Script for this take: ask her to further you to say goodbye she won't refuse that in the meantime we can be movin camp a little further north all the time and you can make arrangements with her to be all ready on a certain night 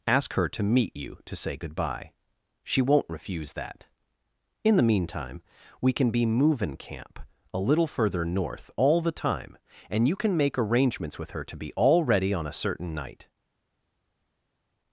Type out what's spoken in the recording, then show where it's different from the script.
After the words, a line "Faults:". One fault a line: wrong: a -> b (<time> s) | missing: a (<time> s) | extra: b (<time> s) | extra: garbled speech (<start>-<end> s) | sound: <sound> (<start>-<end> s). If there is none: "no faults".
ask her to meet you to say goodbye she won't refuse that in the meantime we can be movin camp a little further north all the time and you can make arrangements with her to be all ready on a certain night
Faults:
wrong: further -> meet (0.6 s)